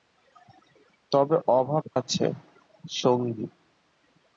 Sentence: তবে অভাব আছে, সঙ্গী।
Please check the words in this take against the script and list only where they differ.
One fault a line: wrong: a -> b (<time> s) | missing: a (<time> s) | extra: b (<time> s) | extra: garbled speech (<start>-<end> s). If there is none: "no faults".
no faults